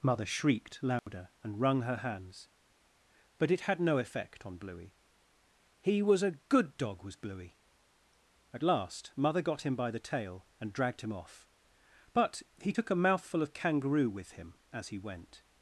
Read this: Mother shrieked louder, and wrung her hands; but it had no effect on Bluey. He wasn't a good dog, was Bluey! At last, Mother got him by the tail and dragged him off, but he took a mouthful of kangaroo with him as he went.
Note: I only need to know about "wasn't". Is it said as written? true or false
false